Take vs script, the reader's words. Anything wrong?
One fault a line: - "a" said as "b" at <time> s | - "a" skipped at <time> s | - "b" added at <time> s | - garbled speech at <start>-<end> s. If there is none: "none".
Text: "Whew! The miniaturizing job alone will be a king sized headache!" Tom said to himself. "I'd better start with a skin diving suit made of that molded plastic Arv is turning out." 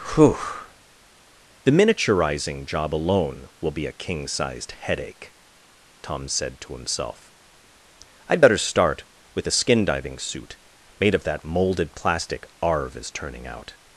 none